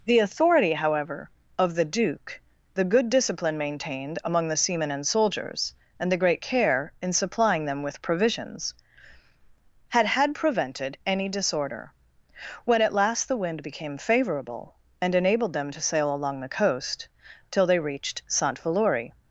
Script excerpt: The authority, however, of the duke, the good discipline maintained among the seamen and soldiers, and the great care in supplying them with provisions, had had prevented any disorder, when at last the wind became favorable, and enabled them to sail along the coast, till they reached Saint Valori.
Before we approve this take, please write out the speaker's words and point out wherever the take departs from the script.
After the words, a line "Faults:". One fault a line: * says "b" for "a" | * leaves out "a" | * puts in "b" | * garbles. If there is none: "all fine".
The authority, however, of the duke, the good discipline maintained among the seamen and soldiers, and the great care in supplying them with provisions, had had prevented any disorder, when at last the wind became favorable, and enabled them to sail along the coast, till they reached Saint Valori.
Faults:
all fine